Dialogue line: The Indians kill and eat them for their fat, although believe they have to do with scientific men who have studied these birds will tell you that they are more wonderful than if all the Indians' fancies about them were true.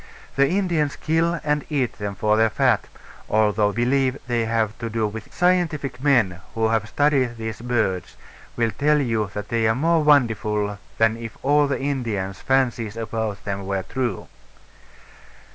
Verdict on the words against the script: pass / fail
pass